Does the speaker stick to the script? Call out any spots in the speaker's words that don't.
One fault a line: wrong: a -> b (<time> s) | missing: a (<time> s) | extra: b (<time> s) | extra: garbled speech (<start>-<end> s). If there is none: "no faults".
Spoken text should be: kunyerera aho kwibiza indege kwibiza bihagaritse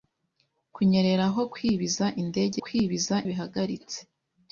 no faults